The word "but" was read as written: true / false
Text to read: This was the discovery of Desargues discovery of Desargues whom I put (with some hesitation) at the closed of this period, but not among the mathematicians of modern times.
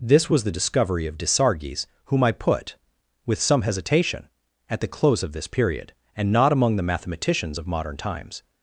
false